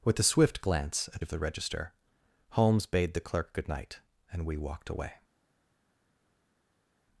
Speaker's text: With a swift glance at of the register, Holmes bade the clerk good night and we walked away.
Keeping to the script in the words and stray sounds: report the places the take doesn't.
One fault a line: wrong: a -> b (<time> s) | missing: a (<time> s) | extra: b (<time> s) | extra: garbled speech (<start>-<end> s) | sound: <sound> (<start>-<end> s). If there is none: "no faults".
no faults